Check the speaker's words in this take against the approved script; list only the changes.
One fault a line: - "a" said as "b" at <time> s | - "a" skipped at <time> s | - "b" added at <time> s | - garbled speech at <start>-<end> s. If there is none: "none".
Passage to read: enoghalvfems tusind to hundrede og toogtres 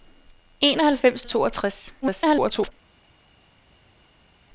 - "tusind to hundrede" skipped at 1.2 s
- garbled speech at 2.0-2.7 s